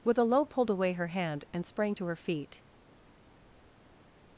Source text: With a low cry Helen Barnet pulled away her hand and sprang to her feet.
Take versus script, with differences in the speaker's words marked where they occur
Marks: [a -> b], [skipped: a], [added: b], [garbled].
With a low [skipped: cry Helen Barnet] pulled away her hand and sprang to her feet.